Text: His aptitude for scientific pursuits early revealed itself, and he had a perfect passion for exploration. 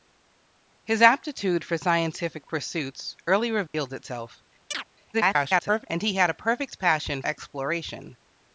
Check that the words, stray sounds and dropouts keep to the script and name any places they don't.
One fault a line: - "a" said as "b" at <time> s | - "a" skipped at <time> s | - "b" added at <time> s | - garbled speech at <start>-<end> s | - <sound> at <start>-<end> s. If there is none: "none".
- dropout at 3.7-3.7 s
- chirp at 4.7-4.8 s
- garbled speech at 5.1-5.9 s
- "for" skipped at 7.2 s